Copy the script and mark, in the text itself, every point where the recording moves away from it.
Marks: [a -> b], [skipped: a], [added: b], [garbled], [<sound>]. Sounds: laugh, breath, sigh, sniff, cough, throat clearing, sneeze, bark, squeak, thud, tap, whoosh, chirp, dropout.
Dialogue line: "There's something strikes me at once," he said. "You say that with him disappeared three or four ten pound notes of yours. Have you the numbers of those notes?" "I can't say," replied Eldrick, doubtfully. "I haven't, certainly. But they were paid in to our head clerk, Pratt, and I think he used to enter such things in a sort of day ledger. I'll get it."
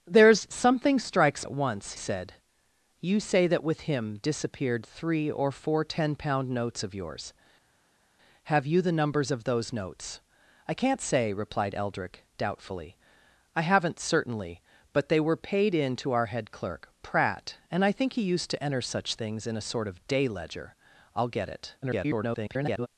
"There's something strikes [skipped: me] at once," [skipped: he] said. "You say that with him disappeared three or four ten pound notes of yours. Have you the numbers of those notes?" "I can't say," replied Eldrick, doubtfully. "I haven't, certainly. But they were paid in to our head clerk, Pratt, and I think he used to enter such things in a sort of day ledger. I'll get it." [garbled]